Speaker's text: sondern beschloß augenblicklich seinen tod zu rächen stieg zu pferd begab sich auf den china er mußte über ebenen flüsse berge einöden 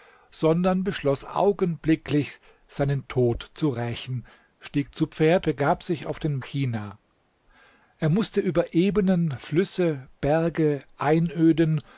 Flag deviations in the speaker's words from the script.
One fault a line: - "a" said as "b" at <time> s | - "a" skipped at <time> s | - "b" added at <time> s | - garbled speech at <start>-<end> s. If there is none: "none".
none